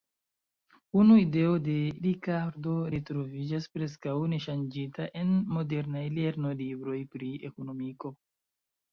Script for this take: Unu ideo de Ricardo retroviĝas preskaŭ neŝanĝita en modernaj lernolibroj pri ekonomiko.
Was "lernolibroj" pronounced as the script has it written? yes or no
yes